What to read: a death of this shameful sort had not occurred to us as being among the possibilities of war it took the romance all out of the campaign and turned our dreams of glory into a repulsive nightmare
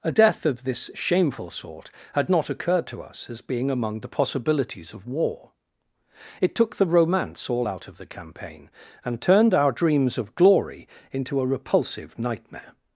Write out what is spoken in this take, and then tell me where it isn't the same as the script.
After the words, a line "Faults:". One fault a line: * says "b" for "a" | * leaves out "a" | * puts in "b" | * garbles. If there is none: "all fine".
a death of this shameful sort had not occurred to us as being among the possibilities of war it took the romance all out of the campaign and turned our dreams of glory into a repulsive nightmare
Faults:
all fine